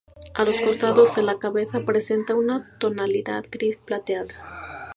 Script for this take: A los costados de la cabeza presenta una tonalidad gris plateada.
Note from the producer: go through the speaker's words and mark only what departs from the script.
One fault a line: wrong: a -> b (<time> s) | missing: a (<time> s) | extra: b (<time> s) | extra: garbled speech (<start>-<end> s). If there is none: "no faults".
no faults